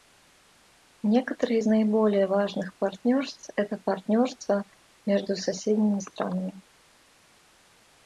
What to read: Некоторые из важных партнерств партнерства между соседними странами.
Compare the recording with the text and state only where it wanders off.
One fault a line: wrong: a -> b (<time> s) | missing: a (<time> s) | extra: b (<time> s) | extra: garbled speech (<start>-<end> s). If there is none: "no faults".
extra: наиболее (1.6 s)
extra: это (3.5 s)